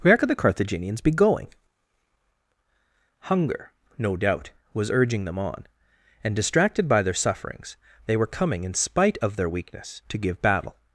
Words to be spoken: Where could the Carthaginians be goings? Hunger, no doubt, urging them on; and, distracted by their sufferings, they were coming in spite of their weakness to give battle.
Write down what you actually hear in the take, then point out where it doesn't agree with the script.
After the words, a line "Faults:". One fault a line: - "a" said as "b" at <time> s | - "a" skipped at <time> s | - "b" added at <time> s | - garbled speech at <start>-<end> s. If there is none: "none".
Where could the Carthaginians be going? Hunger, no doubt, was urging them on; and, distracted by their sufferings, they were coming in spite of their weakness to give battle.
Faults:
- "goings" said as "going" at 1.1 s
- "was" added at 4.7 s